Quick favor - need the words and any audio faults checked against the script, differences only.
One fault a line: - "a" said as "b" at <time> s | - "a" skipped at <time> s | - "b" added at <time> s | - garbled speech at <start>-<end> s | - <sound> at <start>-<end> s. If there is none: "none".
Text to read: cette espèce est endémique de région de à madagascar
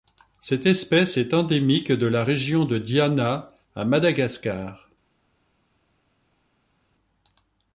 - "la" added at 2.1 s
- "diana" added at 2.8 s